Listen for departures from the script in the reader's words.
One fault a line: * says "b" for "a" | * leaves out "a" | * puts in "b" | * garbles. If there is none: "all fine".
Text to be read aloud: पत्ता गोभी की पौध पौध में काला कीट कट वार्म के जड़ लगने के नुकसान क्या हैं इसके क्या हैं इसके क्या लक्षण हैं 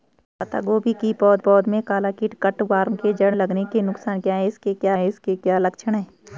all fine